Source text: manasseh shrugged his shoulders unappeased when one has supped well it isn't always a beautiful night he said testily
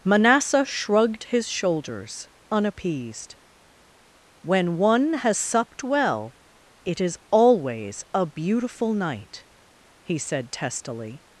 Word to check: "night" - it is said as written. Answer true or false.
true